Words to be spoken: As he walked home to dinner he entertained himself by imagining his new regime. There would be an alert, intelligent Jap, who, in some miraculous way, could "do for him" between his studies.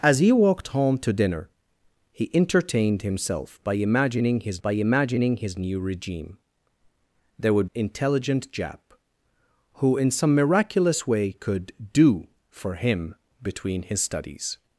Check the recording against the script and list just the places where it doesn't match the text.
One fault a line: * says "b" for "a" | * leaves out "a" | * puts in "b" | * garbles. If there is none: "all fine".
* puts in "by imagining his"
* leaves out "be an alert"